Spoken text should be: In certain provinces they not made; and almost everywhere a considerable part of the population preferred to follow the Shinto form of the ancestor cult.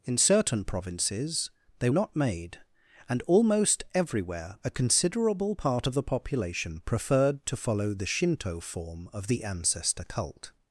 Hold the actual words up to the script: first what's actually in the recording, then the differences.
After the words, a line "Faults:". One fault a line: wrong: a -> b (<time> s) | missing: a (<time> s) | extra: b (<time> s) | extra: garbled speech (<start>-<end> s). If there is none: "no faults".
In certain provinces they not made; and almost everywhere a considerable part of the population preferred to follow the Shinto form of the ancestor cult.
Faults:
no faults